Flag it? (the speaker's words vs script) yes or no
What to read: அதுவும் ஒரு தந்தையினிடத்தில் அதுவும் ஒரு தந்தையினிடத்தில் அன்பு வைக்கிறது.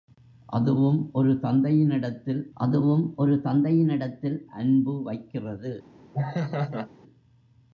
no